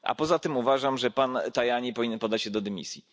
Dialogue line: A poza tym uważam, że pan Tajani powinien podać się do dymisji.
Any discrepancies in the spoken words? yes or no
no